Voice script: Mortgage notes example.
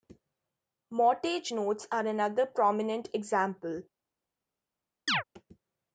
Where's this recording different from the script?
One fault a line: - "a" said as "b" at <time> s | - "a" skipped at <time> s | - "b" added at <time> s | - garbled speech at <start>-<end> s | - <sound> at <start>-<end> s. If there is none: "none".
- "are another prominent" added at 1.9 s
- chirp at 5.1-5.2 s